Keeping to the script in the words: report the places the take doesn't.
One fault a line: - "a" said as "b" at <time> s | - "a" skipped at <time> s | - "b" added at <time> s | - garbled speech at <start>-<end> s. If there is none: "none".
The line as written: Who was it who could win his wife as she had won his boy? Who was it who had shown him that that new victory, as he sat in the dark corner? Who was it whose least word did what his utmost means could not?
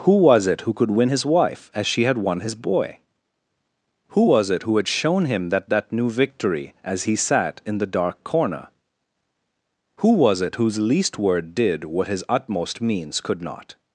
none